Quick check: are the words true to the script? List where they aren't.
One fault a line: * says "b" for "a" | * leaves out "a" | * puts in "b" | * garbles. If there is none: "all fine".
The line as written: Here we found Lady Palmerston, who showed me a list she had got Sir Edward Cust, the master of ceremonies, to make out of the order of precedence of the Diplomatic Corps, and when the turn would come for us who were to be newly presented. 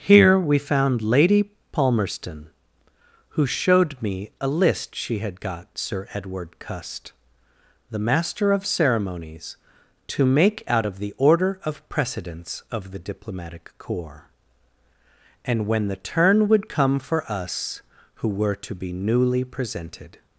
all fine